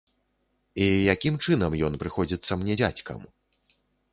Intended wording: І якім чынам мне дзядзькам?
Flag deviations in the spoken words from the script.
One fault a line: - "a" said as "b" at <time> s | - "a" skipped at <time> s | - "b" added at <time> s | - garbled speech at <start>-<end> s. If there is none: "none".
- "ён прыходзіцца" added at 1.9 s